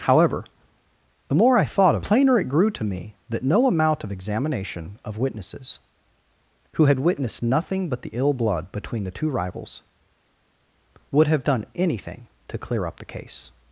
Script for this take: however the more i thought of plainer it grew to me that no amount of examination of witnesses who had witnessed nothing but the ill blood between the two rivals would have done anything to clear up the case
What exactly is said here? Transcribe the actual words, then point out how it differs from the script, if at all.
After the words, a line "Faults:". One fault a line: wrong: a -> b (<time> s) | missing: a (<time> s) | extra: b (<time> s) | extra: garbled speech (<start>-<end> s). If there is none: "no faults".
however the more i thought of plainer it grew to me that no amount of examination of witnesses who had witnessed nothing but the ill blood between the two rivals would have done anything to clear up the case
Faults:
no faults